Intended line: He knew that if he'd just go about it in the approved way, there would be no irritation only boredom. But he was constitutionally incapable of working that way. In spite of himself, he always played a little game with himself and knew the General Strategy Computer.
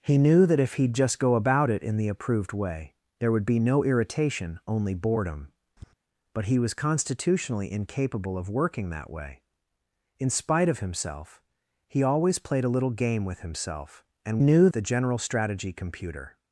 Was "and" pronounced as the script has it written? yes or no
yes